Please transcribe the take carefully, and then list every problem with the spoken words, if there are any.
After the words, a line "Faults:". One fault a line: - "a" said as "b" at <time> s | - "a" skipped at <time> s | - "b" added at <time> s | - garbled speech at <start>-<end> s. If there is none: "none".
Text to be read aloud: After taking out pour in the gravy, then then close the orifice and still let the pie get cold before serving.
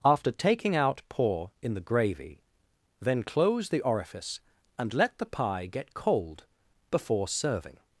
After taking out pour in the gravy, then close the orifice and let the pie get cold before serving.
Faults:
- "then" skipped at 3.2 s
- "still" skipped at 5.0 s